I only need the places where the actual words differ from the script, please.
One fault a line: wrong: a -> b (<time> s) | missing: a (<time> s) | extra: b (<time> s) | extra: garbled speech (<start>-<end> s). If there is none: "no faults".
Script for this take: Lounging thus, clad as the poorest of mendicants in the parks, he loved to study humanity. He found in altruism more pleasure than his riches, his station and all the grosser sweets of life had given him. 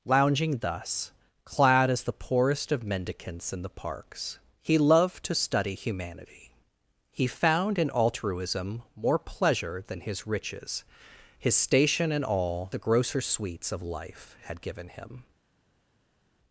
no faults